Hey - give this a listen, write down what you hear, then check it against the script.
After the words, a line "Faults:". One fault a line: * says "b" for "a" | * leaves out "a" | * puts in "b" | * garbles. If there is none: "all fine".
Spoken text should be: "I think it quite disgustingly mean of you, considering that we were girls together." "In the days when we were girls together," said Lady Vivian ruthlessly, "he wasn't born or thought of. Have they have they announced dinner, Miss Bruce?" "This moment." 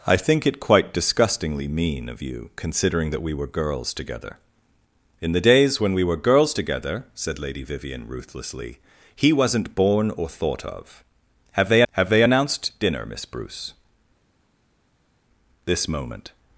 "I think it quite disgustingly mean of you, considering that we were girls together." "In the days when we were girls together," said Lady Vivian ruthlessly, "he wasn't born or thought of. Have they have they announced dinner, Miss Bruce?" "This moment."
Faults:
all fine